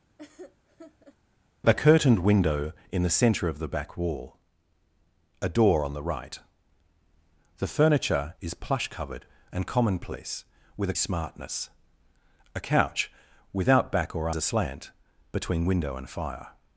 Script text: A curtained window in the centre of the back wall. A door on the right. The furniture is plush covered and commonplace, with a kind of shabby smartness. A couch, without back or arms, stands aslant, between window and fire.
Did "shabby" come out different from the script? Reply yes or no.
yes